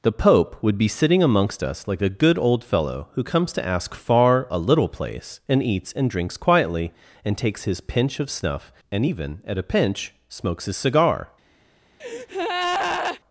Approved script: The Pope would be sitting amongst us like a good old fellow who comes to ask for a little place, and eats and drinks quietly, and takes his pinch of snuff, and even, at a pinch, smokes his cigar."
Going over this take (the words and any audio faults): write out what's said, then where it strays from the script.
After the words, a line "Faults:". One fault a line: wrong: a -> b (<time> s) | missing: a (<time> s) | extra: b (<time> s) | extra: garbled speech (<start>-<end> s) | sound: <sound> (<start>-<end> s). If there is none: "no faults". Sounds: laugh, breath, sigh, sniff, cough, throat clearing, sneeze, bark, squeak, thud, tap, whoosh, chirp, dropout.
The Pope would be sitting amongst us like a good old fellow who comes to ask far a little place, and eats and drinks quietly, and takes his pinch of snuff, and even, at a pinch, smokes his cigar."
Faults:
wrong: for -> far (3.9 s)
sound: breath (12.0-13.2 s)